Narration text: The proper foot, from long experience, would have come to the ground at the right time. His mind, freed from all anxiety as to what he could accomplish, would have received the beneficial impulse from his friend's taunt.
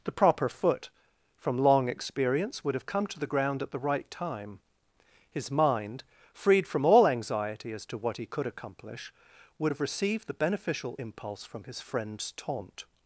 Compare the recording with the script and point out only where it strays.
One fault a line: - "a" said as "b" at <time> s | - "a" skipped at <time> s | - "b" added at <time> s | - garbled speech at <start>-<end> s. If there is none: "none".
none